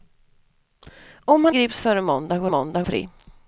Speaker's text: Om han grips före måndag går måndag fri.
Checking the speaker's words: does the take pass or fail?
pass